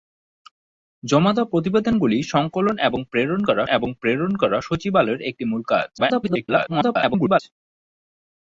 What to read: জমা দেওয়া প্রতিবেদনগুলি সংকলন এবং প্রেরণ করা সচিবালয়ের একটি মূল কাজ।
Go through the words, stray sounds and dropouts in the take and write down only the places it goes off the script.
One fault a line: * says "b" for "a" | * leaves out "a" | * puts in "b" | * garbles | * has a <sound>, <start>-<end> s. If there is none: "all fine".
* puts in "এবং প্রেরণ করা"
* garbles